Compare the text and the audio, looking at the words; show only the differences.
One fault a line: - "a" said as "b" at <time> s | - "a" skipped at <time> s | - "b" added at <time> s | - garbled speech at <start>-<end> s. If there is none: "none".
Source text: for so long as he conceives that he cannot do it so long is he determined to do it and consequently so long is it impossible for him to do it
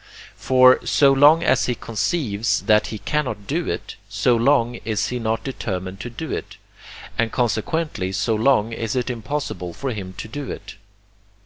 - "not" added at 5.2 s